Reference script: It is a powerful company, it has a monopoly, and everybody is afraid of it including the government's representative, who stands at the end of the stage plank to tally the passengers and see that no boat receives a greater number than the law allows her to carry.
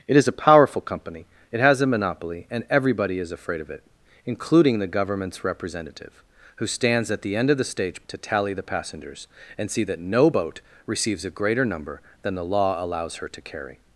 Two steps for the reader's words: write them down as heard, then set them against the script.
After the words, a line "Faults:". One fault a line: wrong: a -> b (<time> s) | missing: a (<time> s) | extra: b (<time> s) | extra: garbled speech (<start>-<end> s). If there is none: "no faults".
It is a powerful company, it has a monopoly, and everybody is afraid of it including the government's representative, who stands at the end of the stage to tally the passengers and see that no boat receives a greater number than the law allows her to carry.
Faults:
missing: plank (8.0 s)